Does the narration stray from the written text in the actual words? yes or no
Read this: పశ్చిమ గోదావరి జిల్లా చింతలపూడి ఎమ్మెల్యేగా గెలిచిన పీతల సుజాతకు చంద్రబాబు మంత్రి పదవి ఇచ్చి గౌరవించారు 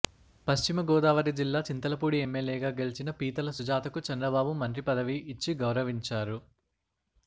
no